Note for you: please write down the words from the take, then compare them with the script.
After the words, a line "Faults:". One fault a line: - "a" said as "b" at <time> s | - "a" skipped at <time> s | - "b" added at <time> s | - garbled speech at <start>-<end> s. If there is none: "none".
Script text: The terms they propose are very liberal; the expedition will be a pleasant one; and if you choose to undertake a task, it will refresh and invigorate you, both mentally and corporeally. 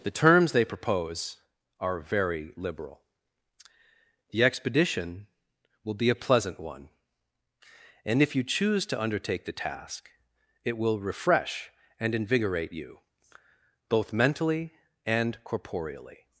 The terms they propose are very liberal; the expedition will be a pleasant one; and if you choose to undertake the task, it will refresh and invigorate you, both mentally and corporeally.
Faults:
- "a" said as "the" at 9.4 s